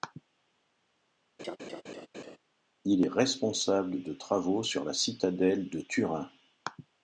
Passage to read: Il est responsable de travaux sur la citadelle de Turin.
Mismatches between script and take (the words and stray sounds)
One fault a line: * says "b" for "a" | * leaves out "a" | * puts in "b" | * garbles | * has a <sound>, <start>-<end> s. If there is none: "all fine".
* has a laugh, 1.4-2.4 s